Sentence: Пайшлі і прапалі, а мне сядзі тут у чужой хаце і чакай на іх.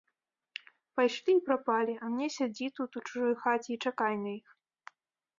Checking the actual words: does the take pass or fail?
pass